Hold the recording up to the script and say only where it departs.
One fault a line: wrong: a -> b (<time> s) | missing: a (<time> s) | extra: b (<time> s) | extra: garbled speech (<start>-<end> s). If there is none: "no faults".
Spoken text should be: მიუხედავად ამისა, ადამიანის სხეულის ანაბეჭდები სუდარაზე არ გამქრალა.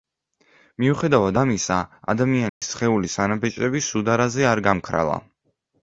no faults